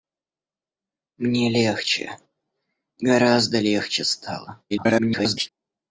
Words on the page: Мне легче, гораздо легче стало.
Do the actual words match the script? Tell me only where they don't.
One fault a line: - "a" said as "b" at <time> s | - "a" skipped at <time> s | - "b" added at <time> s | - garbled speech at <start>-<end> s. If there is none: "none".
- garbled speech at 4.7-5.5 s